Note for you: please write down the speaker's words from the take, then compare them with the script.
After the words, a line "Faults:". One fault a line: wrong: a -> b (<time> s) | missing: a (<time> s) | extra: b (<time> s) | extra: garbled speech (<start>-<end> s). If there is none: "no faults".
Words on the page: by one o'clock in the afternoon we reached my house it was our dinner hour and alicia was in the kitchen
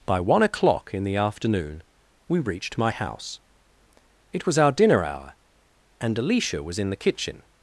by one o'clock in the afternoon we reached my house it was our dinner hour and alicia was in the kitchen
Faults:
no faults